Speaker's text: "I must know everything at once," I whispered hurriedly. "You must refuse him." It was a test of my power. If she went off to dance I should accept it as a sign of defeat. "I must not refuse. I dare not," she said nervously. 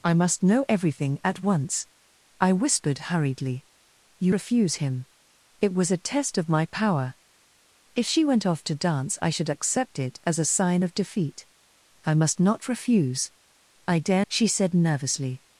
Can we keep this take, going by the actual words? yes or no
no